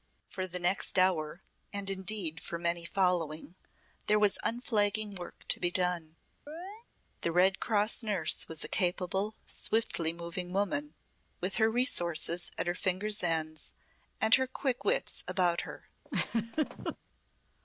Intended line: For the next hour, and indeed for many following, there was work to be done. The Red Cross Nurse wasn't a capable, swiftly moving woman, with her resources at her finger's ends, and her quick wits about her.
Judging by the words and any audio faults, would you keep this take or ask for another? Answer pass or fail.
fail